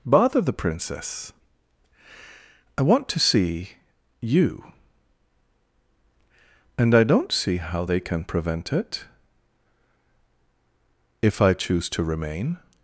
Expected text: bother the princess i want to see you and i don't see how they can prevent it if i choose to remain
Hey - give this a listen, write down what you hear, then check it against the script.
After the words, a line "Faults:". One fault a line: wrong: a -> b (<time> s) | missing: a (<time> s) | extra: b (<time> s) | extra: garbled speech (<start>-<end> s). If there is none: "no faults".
bother the princess i want to see you and i don't see how they can prevent it if i choose to remain
Faults:
no faults